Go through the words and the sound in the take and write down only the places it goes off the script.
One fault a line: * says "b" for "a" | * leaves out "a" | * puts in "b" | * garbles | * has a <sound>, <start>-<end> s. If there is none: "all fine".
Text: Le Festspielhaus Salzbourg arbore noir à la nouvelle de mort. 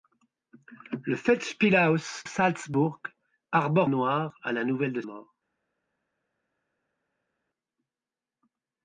all fine